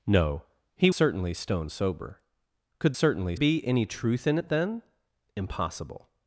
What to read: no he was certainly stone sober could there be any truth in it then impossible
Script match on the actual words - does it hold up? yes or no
no